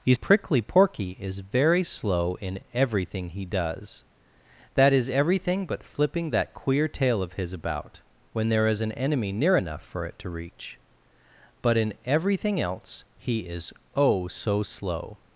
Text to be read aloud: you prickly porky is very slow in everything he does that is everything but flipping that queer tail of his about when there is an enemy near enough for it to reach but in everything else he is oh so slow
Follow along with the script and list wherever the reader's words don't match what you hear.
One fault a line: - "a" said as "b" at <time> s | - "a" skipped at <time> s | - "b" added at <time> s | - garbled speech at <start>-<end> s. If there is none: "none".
none